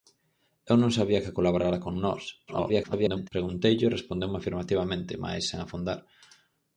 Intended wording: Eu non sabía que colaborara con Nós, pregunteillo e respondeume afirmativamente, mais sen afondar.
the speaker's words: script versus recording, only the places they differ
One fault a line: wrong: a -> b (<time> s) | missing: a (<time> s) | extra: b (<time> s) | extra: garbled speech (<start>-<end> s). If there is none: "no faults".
extra: garbled speech (2.5-3.3 s)